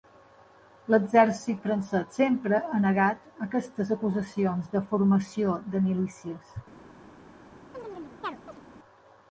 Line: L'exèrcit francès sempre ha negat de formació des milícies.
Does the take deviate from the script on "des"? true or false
true